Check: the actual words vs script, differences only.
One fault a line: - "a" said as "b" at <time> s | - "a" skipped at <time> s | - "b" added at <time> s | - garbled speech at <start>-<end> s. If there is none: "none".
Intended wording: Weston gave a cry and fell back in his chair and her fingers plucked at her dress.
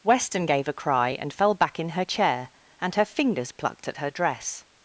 - "his" said as "her" at 1.9 s